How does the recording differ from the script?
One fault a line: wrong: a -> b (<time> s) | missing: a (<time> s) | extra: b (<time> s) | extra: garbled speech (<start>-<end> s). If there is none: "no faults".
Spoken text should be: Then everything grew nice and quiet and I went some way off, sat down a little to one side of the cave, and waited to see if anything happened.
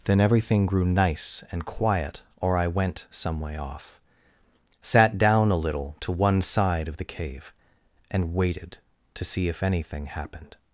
wrong: and -> or (2.4 s)